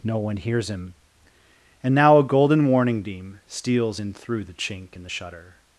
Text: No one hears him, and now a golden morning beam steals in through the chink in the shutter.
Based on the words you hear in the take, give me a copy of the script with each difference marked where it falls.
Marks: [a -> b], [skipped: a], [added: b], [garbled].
No one hears him, and now a golden [morning -> warning] beam steals in through the chink in the shutter.